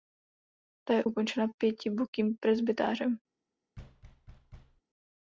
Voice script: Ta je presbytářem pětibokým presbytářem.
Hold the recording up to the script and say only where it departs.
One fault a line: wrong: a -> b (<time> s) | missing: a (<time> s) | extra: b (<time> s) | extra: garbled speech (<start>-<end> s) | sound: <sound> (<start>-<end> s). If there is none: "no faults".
wrong: presbytářem -> ukončena (1.0 s)
sound: thud (3.8-4.8 s)